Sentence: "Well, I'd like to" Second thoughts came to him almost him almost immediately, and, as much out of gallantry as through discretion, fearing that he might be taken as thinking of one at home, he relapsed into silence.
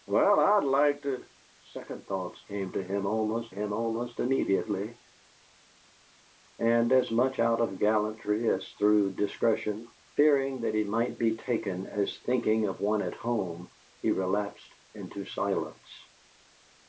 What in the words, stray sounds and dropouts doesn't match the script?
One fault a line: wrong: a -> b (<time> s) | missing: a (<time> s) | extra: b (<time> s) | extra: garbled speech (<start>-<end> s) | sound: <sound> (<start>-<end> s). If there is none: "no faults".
no faults